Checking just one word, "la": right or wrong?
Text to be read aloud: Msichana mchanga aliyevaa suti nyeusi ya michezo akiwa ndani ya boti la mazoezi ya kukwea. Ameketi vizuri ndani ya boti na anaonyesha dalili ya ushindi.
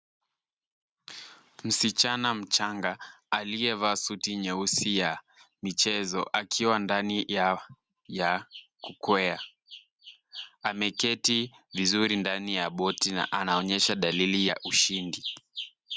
wrong